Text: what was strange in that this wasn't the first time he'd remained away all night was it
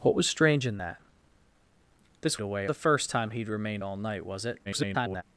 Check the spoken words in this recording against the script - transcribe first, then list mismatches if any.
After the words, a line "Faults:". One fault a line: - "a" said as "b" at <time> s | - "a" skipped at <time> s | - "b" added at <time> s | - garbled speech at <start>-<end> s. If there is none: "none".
what was strange in that this away the first time he'd remained all night was it [garbled]
Faults:
- "wasn't" said as "away" at 2.4 s
- "away" skipped at 3.8 s
- garbled speech at 4.6-5.2 s